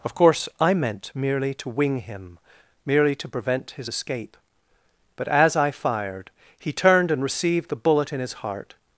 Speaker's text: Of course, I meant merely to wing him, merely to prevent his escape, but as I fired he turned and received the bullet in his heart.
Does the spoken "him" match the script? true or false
true